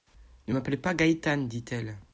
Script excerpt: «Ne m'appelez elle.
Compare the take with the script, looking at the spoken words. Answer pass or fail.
fail